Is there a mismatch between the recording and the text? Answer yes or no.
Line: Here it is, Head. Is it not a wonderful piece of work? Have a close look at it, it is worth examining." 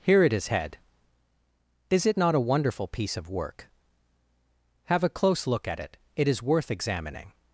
no